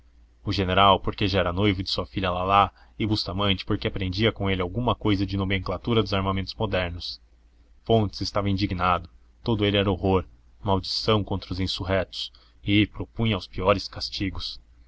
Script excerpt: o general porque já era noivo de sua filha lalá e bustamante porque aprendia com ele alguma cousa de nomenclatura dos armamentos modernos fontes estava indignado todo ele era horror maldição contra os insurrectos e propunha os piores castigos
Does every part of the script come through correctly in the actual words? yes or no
yes